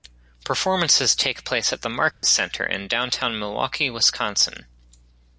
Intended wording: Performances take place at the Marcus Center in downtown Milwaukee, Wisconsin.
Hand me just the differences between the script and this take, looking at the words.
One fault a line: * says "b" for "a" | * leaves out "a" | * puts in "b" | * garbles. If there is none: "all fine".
all fine